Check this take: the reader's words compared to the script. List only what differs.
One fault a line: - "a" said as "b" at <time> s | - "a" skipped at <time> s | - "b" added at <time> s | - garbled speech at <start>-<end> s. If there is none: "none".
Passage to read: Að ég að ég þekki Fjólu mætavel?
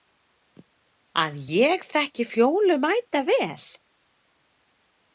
- "að ég" skipped at 1.8 s